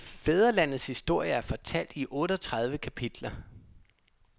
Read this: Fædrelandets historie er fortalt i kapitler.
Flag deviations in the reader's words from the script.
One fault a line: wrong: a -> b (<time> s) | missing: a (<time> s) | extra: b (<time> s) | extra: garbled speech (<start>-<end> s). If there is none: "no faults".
extra: otteogtredive (2.1 s)